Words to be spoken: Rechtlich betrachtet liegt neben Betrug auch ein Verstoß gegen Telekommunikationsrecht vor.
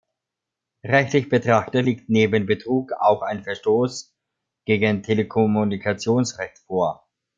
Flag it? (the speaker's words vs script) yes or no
no